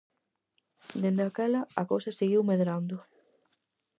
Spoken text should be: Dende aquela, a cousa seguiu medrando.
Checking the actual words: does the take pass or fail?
pass